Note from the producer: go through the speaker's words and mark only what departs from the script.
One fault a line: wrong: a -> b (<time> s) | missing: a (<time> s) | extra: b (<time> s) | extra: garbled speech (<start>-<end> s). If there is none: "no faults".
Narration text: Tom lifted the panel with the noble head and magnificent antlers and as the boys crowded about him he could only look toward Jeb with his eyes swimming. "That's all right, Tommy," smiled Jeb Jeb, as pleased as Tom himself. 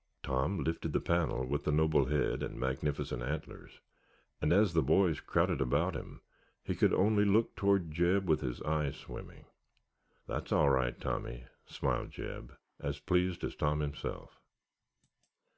missing: Jeb (12.5 s)